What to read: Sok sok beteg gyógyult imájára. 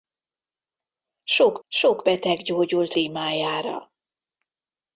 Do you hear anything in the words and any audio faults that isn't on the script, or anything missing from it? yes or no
no